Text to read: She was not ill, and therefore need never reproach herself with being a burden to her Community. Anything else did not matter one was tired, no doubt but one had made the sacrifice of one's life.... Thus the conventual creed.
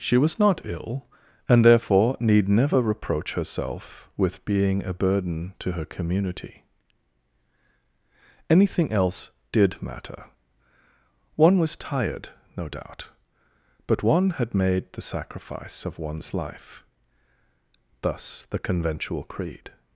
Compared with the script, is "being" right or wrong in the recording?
right